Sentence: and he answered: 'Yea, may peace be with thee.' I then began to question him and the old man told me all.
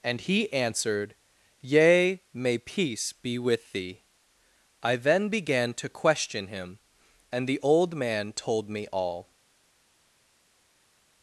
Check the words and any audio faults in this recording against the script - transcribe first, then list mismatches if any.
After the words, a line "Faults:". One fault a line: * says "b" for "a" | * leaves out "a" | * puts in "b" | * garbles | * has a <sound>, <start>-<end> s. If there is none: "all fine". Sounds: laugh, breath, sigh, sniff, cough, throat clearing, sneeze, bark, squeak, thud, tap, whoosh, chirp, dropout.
and he answered: 'Yea, may peace be with thee.' I then began to question him and the old man told me all.
Faults:
all fine